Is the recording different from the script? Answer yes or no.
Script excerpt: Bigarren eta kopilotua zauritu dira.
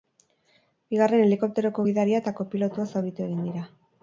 yes